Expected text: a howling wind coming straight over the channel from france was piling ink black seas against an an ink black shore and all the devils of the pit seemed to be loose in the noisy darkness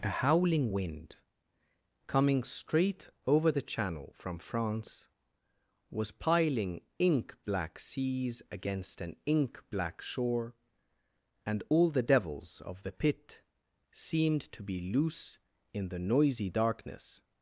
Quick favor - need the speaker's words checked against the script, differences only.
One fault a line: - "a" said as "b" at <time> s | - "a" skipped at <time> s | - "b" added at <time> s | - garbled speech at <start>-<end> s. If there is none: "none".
- "an" skipped at 9.2 s